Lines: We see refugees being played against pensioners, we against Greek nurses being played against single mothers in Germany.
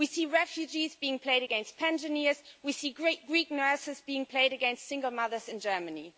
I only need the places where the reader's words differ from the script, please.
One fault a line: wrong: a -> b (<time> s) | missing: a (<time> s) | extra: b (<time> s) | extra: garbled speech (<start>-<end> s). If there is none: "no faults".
wrong: against -> see (2.7 s)